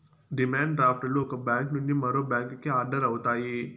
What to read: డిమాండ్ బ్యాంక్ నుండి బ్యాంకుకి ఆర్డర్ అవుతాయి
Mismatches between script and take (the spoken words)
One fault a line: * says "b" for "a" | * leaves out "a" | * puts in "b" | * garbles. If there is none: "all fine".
* puts in "డ్రాఫ్ట్ లు ఒక"
* puts in "మరో"